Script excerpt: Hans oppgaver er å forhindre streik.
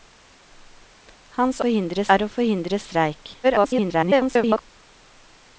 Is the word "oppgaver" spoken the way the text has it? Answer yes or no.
no